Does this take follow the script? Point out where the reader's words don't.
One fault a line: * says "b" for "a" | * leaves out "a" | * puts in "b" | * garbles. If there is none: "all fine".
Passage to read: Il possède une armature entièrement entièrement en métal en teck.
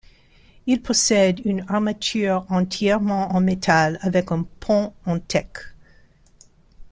* leaves out "entièrement"
* puts in "avec un pont"